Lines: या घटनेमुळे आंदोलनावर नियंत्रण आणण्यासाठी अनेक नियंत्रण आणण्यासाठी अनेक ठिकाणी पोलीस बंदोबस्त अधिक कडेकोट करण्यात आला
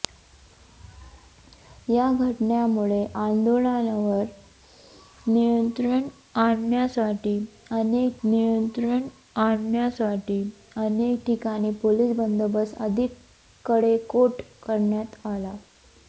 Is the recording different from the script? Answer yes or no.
no